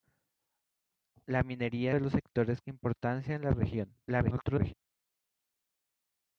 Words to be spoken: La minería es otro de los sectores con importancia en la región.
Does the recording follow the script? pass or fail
fail